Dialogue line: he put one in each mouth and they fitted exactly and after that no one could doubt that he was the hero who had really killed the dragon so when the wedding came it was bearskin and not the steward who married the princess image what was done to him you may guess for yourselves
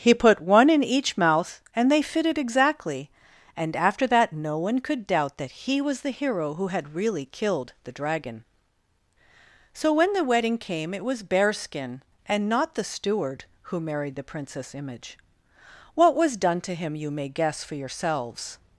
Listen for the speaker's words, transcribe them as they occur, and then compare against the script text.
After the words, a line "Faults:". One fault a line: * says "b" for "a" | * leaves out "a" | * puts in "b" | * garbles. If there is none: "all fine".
he put one in each mouth and they fitted exactly and after that no one could doubt that he was the hero who had really killed the dragon so when the wedding came it was bearskin and not the steward who married the princess image what was done to him you may guess for yourselves
Faults:
all fine